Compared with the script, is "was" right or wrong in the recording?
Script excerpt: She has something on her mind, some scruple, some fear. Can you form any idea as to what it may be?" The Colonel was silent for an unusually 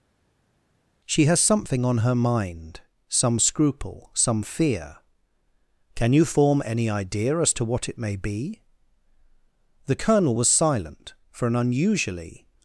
right